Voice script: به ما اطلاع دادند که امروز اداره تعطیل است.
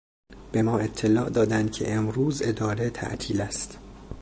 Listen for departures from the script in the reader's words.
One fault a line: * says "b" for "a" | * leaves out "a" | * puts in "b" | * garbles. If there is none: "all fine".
all fine